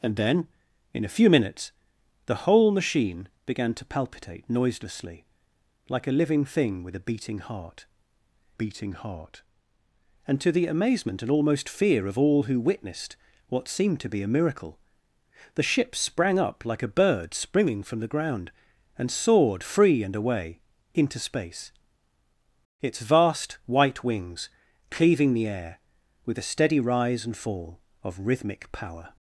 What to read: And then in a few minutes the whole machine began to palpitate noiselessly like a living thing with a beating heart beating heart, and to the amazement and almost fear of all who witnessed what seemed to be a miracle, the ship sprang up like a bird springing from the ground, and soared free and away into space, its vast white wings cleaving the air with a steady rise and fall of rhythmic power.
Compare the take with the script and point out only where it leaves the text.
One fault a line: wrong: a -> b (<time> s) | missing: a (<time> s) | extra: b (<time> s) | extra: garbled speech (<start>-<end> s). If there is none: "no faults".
no faults